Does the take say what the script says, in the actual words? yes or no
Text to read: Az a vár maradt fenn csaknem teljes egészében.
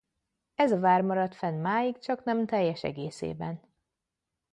no